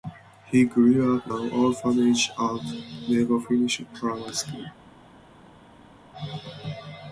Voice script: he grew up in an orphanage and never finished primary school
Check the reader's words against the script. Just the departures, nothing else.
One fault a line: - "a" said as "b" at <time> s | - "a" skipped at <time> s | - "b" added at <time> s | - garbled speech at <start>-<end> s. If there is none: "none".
- "in" skipped at 1.3 s